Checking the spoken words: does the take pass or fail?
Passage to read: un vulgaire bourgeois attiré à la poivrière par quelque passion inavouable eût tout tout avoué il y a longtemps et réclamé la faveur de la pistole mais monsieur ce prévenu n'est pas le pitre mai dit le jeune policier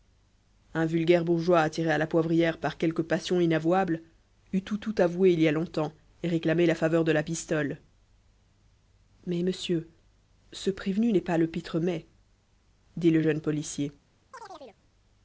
pass